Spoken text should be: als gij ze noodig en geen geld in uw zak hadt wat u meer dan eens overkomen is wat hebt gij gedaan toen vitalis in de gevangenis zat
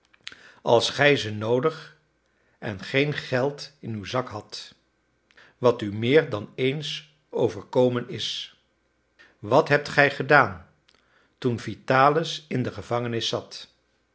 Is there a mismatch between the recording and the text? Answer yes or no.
no